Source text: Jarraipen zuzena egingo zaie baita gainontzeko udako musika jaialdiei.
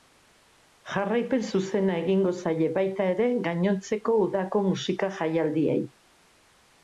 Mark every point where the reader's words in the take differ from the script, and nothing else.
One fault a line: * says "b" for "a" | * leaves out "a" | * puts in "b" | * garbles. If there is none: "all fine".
* puts in "ere"